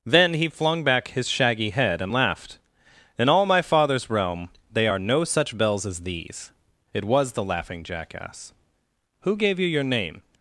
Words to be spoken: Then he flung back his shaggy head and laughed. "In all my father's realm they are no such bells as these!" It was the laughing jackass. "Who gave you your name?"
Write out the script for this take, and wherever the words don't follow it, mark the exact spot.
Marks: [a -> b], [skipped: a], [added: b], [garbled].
Then he flung back his shaggy head and laughed. "In all my father's realm they are no such bells as these!" It was the laughing jackass. "Who gave you your name?"